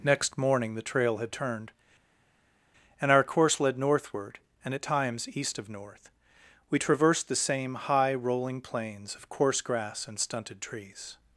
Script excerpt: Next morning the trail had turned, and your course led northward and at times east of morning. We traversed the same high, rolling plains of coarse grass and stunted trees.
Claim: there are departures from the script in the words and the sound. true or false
true